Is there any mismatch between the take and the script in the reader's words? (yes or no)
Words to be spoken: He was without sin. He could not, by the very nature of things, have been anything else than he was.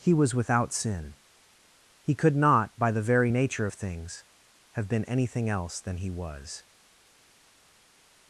no